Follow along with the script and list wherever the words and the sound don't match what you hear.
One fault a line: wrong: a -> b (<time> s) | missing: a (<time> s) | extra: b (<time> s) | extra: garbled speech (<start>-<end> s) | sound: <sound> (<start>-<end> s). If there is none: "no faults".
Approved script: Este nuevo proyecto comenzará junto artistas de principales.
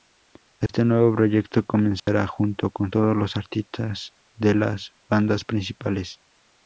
sound: dropout (0.7-0.7 s)
sound: dropout (2.0-2.1 s)
extra: con todos los (2.7 s)
extra: las bandas (4.5 s)